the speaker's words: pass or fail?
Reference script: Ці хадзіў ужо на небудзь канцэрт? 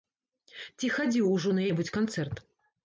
pass